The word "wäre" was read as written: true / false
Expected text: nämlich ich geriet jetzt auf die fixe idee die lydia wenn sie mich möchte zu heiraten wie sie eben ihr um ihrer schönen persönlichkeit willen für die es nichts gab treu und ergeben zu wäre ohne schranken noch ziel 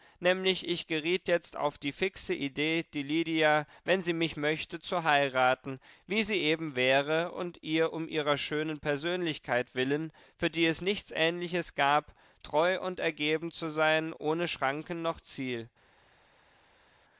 false